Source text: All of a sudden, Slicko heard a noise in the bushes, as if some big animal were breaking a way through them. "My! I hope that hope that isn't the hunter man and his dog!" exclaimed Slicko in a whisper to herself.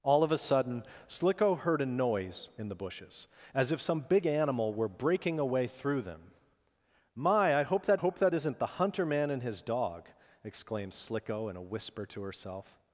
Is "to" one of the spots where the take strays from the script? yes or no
no